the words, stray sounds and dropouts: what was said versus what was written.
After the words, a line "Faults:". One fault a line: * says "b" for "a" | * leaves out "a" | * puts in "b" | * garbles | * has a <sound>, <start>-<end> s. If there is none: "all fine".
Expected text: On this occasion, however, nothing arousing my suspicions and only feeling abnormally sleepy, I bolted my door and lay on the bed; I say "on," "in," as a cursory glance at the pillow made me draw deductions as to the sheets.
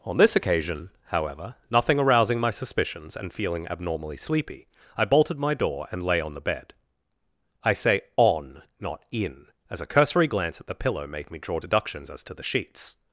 On this occasion, however, nothing arousing my suspicions and feeling abnormally sleepy, I bolted my door and lay on the bed; I say "on," not "in," as a cursory glance at the pillow made me draw deductions as to the sheets.
Faults:
* leaves out "only"
* puts in "not"